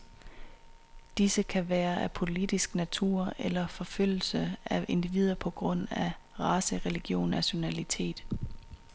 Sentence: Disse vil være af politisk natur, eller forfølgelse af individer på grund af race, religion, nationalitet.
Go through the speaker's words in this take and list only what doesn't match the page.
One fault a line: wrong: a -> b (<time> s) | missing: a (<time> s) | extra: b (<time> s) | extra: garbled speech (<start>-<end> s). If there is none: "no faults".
wrong: vil -> kan (1.4 s)